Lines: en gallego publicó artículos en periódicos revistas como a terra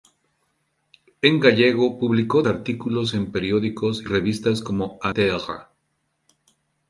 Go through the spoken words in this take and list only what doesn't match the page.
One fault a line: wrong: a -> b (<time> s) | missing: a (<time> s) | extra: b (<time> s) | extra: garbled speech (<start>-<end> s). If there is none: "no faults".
no faults